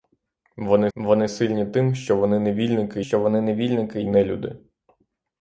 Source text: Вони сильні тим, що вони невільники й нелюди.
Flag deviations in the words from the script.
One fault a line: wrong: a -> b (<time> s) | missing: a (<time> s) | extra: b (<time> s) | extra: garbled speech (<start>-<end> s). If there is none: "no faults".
extra: вони (1.0 s)
extra: що вони невільники (3.0 s)